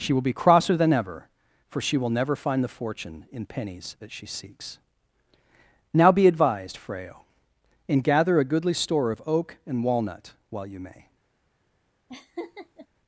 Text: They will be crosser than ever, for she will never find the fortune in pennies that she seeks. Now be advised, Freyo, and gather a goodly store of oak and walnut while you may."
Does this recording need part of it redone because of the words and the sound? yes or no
yes